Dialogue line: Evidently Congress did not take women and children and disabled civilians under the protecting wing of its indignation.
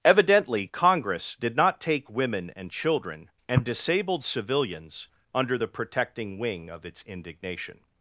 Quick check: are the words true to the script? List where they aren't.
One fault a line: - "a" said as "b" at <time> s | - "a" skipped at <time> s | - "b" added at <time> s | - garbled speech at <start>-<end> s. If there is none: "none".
none